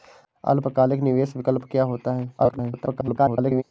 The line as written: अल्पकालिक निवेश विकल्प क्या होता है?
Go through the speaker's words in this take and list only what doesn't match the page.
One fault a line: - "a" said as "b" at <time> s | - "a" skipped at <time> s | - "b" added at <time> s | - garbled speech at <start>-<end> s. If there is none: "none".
- garbled speech at 2.4-3.6 s